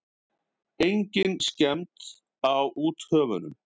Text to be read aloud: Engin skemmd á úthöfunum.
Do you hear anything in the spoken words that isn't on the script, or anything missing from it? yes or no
no